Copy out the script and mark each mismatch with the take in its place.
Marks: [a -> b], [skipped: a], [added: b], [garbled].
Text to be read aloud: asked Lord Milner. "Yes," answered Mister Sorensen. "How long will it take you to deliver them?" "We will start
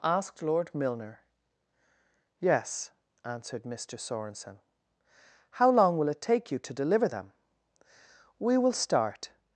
asked Lord Milner. "Yes," answered Mister Sorensen. "How long will it take you to deliver them?" "We will start